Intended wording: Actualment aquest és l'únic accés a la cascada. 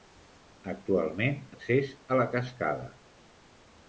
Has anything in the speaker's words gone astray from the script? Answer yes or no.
yes